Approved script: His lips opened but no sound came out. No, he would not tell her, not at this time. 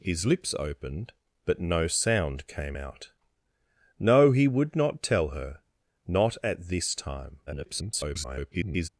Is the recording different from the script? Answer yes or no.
yes